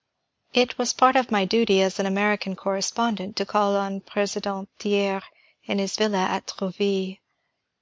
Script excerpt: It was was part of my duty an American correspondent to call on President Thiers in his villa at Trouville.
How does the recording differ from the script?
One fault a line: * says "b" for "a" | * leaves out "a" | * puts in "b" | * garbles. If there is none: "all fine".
* leaves out "was"
* puts in "as"